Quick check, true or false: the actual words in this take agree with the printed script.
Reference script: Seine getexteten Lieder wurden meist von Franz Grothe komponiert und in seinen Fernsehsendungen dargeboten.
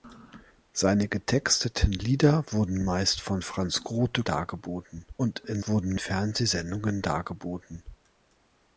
false